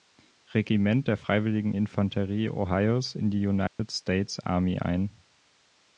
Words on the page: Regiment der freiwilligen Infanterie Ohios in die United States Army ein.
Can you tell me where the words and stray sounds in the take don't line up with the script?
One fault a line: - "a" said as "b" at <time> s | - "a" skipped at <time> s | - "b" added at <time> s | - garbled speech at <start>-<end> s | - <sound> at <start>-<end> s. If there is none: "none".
- dropout at 3.7-3.8 s